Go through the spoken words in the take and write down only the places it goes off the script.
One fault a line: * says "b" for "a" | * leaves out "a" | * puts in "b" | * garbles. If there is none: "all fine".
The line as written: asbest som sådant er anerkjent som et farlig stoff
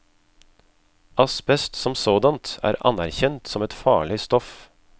all fine